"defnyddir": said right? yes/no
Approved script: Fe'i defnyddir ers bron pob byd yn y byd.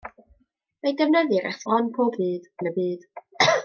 yes